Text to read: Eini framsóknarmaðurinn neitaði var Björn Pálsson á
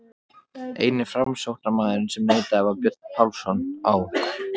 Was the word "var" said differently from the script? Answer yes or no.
no